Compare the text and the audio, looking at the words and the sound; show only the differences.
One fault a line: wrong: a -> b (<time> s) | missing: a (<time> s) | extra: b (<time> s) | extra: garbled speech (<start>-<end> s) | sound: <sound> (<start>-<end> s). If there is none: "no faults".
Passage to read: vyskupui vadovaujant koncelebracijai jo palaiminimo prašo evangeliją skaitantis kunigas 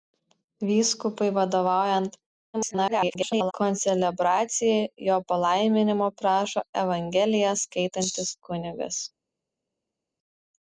extra: garbled speech (2.5-3.5 s)